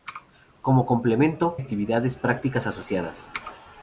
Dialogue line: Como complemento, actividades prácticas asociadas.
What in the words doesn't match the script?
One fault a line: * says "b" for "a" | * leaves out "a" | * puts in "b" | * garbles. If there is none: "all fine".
all fine